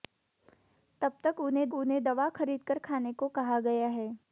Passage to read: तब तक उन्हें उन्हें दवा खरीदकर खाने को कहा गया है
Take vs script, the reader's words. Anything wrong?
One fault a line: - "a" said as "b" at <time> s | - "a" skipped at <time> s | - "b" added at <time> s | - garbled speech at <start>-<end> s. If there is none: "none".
none